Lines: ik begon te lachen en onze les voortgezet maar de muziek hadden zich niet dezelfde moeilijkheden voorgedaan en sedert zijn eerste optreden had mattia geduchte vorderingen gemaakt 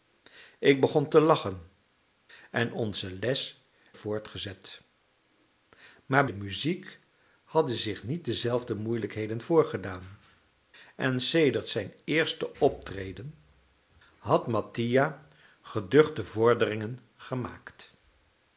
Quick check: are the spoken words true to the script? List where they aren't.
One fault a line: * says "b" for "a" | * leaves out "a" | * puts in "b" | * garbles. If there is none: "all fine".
all fine